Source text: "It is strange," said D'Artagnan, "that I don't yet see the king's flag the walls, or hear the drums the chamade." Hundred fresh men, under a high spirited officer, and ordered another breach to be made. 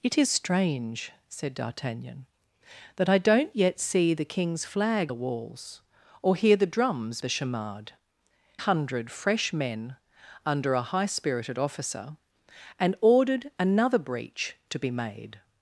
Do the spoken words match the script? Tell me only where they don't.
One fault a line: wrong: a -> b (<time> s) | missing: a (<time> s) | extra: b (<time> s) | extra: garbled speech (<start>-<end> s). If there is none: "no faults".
no faults